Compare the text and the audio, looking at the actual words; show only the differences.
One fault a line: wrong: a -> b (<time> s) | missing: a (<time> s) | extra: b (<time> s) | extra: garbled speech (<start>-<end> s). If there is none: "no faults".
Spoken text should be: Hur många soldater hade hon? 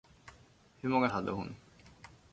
missing: soldater (1.1 s)